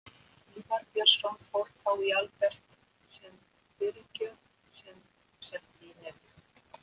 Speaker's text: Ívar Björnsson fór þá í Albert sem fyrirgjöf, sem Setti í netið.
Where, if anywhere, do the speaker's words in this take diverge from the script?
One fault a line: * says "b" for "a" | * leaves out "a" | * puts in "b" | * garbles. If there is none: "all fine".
all fine